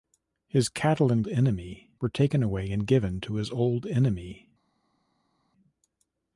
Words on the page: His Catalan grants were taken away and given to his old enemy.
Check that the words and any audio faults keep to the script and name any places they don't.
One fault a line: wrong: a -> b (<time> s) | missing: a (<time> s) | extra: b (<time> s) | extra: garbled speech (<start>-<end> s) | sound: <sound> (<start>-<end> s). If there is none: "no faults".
wrong: grants -> enemy (1.3 s)